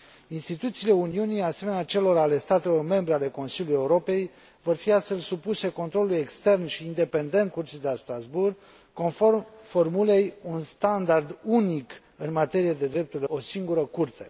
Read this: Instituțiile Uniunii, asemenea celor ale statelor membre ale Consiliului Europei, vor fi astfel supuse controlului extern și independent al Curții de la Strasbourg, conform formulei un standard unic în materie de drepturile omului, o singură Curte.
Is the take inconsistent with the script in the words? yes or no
yes